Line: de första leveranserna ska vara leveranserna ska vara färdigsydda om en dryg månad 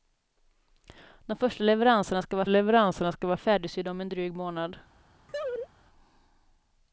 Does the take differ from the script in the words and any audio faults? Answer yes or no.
yes